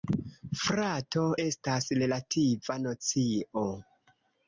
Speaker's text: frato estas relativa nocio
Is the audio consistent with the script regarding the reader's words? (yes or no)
yes